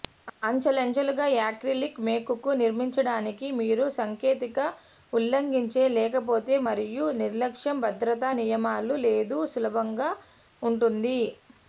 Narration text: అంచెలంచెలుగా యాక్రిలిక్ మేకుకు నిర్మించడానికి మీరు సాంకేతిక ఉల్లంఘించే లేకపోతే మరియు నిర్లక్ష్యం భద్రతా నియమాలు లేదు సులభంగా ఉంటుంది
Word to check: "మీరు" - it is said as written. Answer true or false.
true